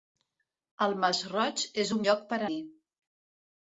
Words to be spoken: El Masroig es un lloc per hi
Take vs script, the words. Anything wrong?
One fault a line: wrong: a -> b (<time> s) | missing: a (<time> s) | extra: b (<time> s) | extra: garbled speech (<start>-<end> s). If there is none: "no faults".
no faults